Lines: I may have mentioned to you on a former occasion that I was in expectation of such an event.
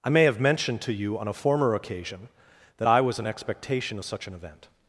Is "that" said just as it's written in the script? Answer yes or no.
yes